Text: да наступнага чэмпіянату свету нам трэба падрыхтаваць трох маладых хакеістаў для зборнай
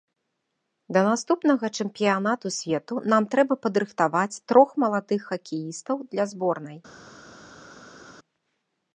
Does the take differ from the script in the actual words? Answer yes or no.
no